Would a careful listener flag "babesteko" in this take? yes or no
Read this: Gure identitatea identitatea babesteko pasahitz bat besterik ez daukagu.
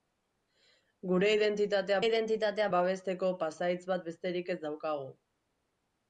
no